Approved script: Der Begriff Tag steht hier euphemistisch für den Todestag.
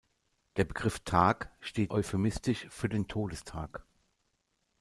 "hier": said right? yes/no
no